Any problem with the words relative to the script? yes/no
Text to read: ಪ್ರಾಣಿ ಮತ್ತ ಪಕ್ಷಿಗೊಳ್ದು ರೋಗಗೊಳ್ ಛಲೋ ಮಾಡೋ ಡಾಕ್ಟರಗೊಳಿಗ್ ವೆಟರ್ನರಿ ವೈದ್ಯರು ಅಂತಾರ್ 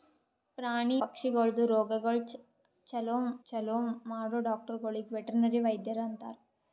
yes